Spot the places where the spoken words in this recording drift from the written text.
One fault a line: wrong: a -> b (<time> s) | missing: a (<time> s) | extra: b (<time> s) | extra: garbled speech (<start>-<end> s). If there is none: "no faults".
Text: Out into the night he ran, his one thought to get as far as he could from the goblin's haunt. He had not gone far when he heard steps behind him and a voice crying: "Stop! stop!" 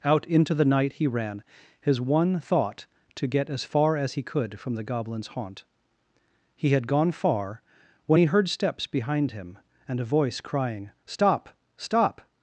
missing: not (6.9 s)